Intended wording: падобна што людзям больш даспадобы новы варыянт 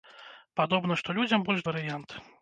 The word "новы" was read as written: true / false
false